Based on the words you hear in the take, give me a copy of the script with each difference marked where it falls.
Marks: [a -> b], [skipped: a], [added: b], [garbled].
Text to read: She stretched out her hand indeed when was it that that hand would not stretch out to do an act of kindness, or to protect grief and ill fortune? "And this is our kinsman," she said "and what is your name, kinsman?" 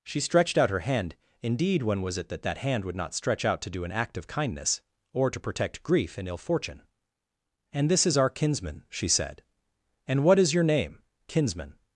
She stretched out her hand indeed when was it that that hand would not stretch out to do an act of kindness, or to protect grief and ill fortune? "And this is our kinsman," she said "and what is your name, kinsman?"